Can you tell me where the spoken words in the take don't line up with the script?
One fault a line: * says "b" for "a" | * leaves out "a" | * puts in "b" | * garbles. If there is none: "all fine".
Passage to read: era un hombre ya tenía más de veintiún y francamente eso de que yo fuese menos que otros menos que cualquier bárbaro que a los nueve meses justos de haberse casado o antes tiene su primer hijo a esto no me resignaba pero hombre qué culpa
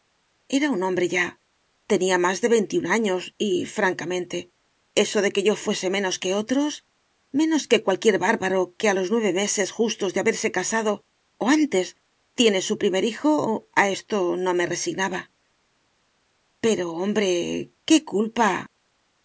* puts in "años"